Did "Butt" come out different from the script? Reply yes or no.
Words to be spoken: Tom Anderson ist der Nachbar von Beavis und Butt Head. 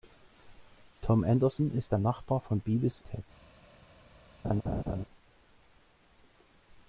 yes